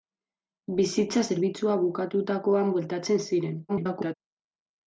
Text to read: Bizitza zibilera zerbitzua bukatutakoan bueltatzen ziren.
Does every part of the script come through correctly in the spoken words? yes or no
no